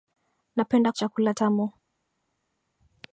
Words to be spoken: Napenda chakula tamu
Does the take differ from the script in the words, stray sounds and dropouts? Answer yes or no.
no